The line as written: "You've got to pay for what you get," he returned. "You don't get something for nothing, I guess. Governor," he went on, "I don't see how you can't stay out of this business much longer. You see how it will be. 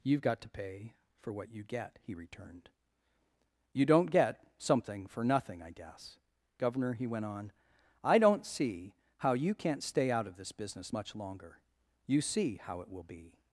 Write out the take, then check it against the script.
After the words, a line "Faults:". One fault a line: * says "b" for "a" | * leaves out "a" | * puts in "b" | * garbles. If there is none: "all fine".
"You've got to pay for what you get," he returned. "You don't get something for nothing, I guess. Governor," he went on, "I don't see how you can't stay out of this business much longer. You see how it will be.
Faults:
all fine